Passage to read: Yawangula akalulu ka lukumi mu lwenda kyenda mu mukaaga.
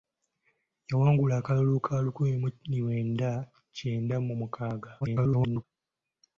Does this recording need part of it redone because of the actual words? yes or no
yes